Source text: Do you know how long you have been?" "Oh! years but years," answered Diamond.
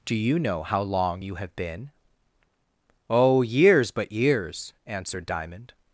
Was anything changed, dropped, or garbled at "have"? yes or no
no